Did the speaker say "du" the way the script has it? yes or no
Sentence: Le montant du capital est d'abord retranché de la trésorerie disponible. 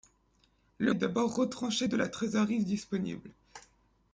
no